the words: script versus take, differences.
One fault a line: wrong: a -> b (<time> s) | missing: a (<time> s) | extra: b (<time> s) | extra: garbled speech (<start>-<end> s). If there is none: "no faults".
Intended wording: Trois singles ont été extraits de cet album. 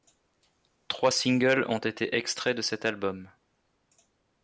no faults